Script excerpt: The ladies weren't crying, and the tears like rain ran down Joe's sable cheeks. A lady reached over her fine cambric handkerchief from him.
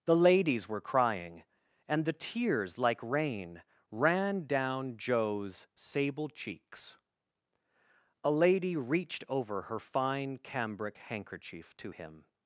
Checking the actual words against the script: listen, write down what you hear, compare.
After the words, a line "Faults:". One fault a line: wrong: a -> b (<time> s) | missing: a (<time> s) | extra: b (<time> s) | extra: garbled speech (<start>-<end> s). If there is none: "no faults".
The ladies were crying, and the tears like rain ran down Joe's sable cheeks. A lady reached over her fine cambric handkerchief to him.
Faults:
wrong: weren't -> were (0.7 s)
wrong: from -> to (11.8 s)